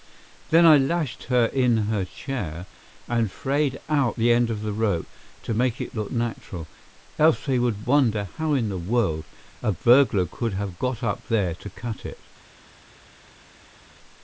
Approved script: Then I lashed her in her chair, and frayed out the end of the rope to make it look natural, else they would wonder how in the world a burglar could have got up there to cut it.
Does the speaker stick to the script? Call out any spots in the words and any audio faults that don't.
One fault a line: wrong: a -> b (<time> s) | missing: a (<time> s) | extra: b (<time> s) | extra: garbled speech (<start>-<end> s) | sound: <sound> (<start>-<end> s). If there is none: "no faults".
no faults